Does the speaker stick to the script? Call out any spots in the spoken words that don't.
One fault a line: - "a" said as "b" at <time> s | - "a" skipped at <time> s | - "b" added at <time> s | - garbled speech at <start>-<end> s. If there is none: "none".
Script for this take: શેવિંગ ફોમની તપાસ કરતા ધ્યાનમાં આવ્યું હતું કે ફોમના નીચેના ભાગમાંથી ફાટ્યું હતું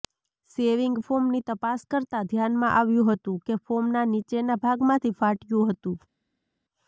none